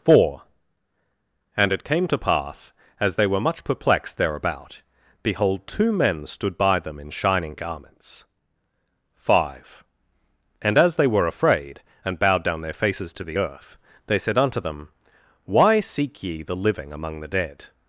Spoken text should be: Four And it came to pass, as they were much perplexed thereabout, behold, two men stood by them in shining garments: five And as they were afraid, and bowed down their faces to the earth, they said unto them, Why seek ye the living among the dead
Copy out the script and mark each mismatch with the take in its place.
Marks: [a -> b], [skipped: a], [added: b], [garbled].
Four And it came to pass, as they were much perplexed thereabout, behold, two men stood by them in shining garments: five And as they were afraid, and bowed down their faces to the earth, they said unto them, Why seek ye the living among the dead